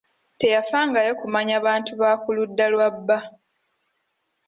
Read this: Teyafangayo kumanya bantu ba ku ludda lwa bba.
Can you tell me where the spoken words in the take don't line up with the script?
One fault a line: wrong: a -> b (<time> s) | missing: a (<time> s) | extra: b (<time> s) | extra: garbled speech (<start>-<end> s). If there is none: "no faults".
no faults